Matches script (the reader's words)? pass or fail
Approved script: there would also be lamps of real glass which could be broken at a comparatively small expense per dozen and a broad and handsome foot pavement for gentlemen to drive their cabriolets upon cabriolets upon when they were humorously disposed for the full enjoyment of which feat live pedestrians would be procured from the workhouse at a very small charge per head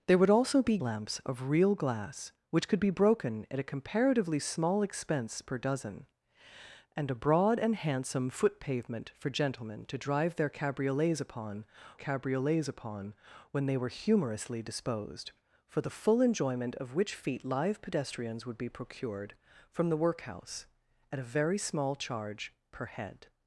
pass